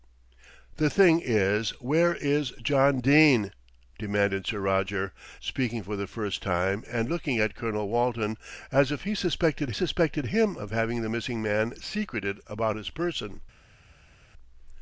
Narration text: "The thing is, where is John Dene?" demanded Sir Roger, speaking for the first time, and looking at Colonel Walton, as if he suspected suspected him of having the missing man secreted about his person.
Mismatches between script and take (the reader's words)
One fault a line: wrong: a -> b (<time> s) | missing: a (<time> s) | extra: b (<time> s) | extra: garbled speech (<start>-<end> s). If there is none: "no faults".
no faults